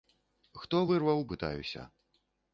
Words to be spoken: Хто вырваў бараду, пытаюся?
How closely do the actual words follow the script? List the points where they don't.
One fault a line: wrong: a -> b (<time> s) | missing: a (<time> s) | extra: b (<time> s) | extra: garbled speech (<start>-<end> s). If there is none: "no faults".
missing: бараду (1.3 s)